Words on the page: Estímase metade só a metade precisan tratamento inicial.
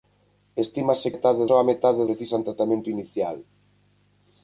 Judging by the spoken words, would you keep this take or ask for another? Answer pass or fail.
pass